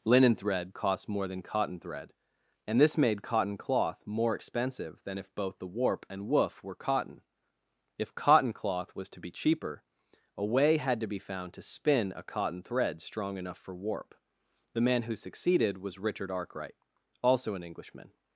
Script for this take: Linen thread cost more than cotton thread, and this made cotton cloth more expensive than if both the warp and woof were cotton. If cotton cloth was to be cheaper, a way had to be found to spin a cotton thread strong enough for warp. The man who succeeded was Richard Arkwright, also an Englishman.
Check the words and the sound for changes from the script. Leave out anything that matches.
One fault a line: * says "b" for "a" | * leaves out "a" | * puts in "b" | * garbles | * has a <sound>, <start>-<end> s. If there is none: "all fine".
all fine